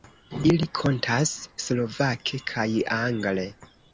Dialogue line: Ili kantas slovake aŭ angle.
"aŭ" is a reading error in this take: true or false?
true